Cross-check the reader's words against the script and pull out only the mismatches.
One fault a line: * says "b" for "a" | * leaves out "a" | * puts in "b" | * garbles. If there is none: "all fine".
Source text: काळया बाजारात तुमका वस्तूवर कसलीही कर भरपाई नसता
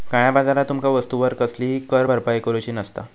* puts in "करूची"